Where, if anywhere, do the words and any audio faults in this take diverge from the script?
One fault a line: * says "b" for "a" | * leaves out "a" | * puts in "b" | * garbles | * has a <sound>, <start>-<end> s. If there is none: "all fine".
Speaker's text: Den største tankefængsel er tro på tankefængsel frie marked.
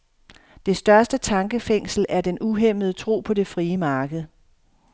* says "Det" for "Den"
* puts in "den uhæmmede"
* says "det" for "tankefængsel"